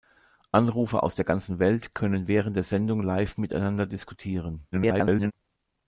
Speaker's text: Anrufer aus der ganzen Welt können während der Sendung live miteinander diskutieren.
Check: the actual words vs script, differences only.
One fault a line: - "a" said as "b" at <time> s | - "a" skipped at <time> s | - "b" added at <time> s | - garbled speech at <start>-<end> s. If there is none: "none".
- garbled speech at 4.7-5.3 s